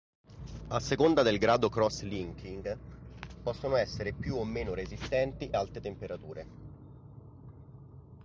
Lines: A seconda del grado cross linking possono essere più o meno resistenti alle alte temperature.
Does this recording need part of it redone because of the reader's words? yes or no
yes